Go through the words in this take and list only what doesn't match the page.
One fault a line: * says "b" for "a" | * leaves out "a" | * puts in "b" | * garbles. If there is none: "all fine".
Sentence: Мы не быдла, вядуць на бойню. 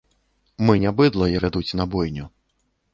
all fine